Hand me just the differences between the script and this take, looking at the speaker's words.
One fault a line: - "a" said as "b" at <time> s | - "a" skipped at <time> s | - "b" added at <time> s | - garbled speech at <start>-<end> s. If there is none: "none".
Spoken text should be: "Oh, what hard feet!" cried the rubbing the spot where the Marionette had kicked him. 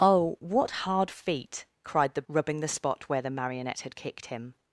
none